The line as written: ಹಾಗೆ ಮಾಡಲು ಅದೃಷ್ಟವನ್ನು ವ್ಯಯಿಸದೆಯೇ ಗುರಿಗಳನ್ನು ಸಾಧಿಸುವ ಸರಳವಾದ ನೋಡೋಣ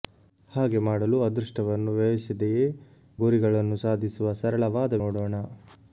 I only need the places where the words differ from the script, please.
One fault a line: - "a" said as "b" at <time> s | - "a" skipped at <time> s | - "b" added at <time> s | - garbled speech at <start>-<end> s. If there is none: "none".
none